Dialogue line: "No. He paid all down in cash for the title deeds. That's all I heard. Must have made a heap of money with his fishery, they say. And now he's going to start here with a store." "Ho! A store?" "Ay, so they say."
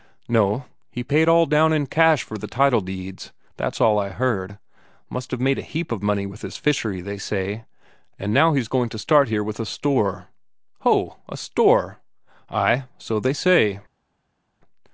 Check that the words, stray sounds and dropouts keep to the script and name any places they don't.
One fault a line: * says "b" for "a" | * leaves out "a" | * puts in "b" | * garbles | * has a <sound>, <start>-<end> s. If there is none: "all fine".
all fine